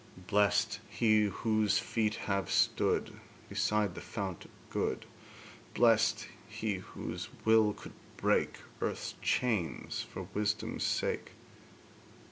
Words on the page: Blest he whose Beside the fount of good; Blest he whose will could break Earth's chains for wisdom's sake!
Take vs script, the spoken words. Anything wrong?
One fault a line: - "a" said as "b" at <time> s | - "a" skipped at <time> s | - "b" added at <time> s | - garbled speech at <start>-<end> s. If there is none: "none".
- "feet have stood" added at 1.7 s